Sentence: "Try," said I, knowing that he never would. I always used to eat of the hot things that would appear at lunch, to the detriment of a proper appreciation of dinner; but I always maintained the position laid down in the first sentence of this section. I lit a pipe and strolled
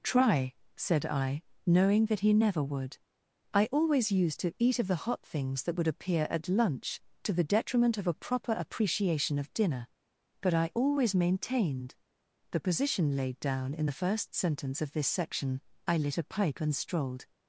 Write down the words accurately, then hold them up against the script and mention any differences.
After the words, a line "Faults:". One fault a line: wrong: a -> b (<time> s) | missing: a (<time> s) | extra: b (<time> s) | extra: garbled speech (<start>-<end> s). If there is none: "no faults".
"Try," said I, knowing that he never would. I always used to eat of the hot things that would appear at lunch, to the detriment of a proper appreciation of dinner; but I always maintained the position laid down in the first sentence of this section. I lit a pipe and strolled
Faults:
no faults